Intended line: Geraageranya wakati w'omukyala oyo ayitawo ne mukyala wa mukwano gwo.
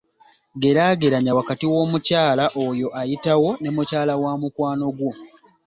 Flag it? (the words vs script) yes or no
no